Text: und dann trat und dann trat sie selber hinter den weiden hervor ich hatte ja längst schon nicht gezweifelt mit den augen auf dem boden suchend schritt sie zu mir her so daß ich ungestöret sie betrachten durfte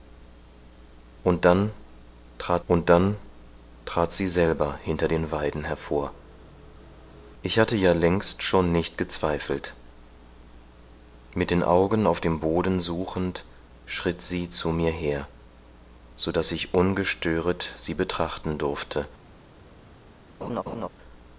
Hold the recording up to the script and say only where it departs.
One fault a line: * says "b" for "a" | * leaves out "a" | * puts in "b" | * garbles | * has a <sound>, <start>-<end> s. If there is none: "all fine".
* has a laugh, 20.4-20.9 s